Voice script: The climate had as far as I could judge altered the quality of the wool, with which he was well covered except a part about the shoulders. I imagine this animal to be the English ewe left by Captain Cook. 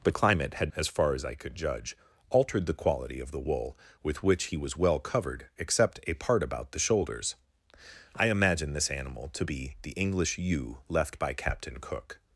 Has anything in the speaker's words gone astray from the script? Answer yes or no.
no